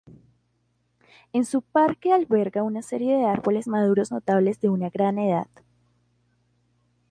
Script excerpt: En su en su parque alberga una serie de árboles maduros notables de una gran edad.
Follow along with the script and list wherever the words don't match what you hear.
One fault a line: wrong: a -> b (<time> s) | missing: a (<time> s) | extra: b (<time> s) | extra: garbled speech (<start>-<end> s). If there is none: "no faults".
missing: en su (1.6 s)